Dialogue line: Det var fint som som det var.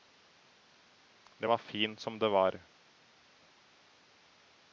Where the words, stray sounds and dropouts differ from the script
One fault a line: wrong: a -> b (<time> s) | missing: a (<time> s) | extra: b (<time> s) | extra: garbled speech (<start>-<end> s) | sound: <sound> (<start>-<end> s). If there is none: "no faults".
missing: som (2.2 s)